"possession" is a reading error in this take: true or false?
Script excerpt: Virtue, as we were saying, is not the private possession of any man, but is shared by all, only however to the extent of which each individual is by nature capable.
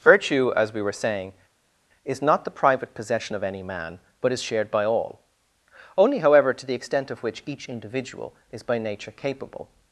false